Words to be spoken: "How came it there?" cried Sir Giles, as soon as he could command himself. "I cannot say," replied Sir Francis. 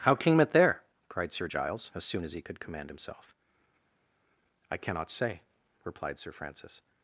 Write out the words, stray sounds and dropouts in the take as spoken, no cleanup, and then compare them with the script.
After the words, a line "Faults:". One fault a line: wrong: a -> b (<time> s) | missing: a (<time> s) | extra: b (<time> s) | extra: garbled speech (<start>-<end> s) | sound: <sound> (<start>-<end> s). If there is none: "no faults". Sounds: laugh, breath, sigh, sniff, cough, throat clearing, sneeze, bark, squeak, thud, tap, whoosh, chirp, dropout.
"How came it there?" cried Sir Giles, as soon as he could command himself. "I cannot say," replied Sir Francis.
Faults:
no faults